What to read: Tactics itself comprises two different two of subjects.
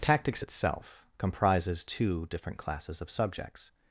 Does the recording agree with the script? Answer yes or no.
no